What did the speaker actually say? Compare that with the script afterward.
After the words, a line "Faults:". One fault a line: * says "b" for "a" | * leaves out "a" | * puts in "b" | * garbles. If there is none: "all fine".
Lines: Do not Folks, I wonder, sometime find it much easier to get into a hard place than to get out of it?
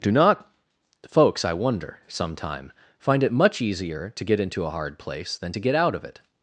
Do not Folks, I wonder, sometime find it much easier to get into a hard place than to get out of it?
Faults:
all fine